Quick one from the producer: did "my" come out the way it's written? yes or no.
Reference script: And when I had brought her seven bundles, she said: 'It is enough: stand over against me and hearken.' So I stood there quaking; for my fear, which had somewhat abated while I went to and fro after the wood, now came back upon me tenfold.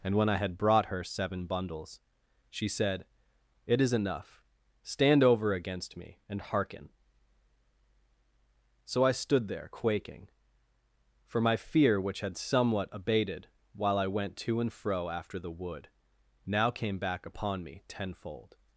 yes